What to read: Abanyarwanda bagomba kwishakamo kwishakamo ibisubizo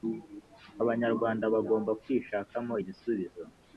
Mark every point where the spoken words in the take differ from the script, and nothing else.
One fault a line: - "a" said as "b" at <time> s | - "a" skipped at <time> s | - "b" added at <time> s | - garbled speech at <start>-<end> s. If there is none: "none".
- "kwishakamo" skipped at 2.7 s